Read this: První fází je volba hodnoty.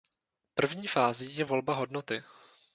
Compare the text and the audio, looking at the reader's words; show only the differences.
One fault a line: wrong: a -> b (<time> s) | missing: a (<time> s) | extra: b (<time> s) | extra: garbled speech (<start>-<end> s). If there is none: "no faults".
no faults